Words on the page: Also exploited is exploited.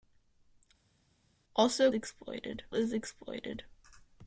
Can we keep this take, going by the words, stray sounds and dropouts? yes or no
yes